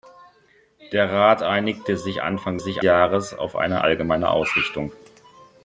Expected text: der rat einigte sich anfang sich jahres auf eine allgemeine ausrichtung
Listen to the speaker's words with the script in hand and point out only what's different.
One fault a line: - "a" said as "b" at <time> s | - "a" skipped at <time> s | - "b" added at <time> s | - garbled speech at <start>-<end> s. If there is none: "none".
none